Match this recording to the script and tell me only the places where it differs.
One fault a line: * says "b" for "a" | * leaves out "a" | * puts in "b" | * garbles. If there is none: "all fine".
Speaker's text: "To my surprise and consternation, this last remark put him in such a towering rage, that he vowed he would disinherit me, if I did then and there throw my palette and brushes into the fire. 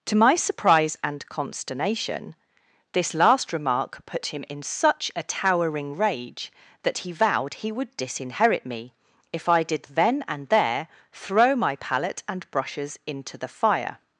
all fine